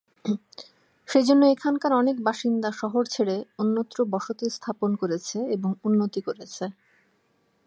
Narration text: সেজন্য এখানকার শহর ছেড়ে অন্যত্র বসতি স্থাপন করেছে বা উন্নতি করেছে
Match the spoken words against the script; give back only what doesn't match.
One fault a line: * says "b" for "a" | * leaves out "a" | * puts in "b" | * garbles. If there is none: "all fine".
* puts in "অনেক বাসিন্দা"
* says "এবং" for "বা"